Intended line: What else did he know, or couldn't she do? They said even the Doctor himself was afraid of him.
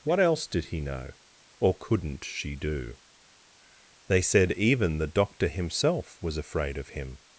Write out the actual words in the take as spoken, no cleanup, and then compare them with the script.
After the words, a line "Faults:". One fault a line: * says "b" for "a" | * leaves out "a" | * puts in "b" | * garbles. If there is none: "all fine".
What else did he know, or couldn't she do? They said even the Doctor himself was afraid of him.
Faults:
all fine